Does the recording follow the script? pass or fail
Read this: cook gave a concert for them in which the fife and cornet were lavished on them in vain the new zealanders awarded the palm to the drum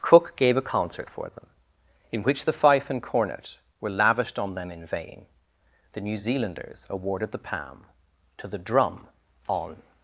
fail